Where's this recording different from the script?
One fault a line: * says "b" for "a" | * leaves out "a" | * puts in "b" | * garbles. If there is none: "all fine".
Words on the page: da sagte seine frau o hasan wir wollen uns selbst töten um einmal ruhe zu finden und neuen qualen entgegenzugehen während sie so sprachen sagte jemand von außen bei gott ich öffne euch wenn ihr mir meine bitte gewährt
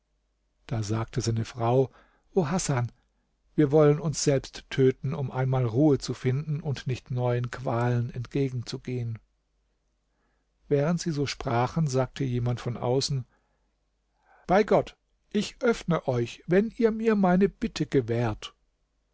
* puts in "nicht"